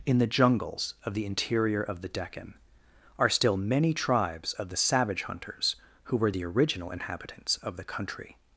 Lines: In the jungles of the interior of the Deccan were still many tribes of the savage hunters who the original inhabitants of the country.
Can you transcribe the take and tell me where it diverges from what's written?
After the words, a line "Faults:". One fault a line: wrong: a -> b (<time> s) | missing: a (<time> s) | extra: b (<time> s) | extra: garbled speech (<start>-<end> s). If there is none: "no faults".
In the jungles of the interior of the Deccan are still many tribes of the savage hunters who were the original inhabitants of the country.
Faults:
wrong: were -> are (3.2 s)
extra: were (6.2 s)